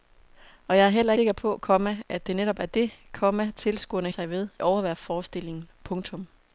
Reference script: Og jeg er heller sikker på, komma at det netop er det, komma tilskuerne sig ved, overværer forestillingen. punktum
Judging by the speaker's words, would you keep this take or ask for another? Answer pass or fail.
pass